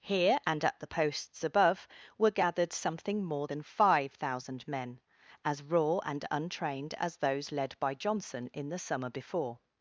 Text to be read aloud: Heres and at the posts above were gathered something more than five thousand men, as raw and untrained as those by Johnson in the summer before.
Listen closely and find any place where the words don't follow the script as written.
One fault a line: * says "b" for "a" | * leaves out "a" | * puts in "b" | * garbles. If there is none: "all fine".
* says "Here" for "Heres"
* puts in "led"